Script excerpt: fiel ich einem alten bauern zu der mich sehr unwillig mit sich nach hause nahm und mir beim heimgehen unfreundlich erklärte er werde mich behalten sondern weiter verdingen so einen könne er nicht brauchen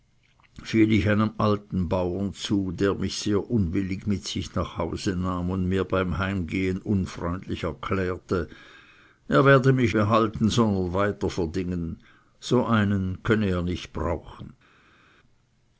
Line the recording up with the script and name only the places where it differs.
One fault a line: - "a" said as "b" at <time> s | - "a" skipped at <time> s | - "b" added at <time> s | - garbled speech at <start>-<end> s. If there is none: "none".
none